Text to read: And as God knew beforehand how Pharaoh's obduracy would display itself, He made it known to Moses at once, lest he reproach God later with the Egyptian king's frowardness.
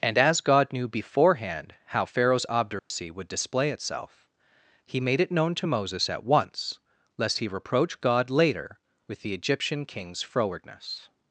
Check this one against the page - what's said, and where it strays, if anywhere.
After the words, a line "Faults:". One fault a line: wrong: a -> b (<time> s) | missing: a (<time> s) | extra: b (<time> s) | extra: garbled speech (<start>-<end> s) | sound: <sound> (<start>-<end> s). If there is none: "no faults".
And as God knew beforehand how Pharaoh's obduracy would display itself, He made it known to Moses at once, lest he reproach God later with the Egyptian king's frowardness.
Faults:
sound: dropout (2.8-2.9 s)